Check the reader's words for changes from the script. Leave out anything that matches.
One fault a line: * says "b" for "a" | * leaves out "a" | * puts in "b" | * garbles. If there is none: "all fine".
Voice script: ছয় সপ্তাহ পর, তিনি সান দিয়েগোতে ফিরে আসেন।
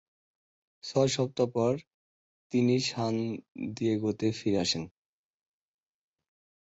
all fine